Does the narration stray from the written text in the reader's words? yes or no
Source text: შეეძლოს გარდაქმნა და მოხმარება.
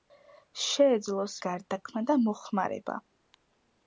no